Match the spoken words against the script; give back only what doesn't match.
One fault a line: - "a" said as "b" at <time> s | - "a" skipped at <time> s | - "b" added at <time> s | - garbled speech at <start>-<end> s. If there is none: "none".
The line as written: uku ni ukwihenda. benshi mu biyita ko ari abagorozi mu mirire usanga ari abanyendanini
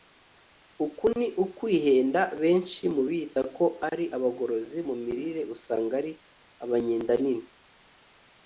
none